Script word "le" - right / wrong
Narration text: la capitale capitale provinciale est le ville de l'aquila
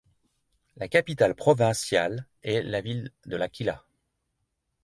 wrong